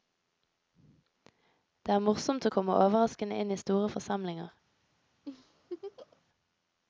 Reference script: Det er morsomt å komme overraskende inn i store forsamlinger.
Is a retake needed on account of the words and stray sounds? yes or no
yes